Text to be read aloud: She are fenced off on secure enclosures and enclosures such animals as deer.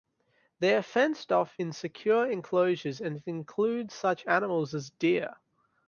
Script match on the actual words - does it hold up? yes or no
no